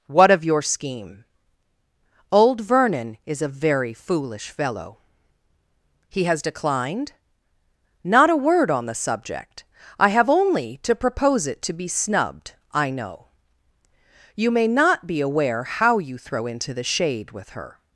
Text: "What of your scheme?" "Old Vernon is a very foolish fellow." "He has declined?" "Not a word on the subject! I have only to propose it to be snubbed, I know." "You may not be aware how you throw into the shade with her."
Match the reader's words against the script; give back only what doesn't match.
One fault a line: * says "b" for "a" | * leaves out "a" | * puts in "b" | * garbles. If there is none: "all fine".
all fine